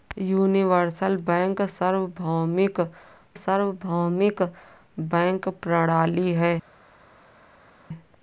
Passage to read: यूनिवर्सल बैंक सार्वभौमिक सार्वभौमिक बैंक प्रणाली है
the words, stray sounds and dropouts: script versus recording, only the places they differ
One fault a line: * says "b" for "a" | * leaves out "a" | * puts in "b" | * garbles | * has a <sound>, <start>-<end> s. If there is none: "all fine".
all fine